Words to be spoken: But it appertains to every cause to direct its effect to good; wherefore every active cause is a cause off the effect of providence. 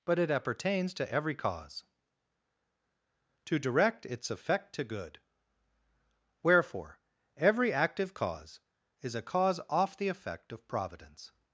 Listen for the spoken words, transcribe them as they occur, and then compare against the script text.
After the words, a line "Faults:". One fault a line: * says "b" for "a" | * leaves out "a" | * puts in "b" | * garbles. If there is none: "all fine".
But it appertains to every cause to direct its effect to good; wherefore every active cause is a cause off the effect of providence.
Faults:
all fine